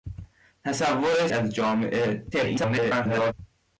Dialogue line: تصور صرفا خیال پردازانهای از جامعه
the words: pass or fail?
fail